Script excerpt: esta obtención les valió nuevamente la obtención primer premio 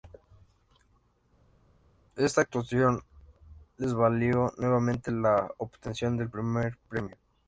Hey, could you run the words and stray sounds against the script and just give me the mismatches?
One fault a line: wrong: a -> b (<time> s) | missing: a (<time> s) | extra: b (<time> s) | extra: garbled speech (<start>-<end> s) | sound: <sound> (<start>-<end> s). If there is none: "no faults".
wrong: obtención -> actuación (2.4 s)
extra: del (6.2 s)